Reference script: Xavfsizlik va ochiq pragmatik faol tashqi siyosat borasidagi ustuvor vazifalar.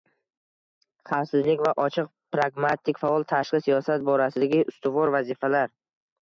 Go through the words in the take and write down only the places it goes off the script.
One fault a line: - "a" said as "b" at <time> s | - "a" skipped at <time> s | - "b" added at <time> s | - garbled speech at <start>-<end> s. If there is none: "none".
none